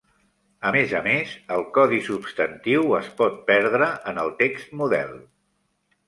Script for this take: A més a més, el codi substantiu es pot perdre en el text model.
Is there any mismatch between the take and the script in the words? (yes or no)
no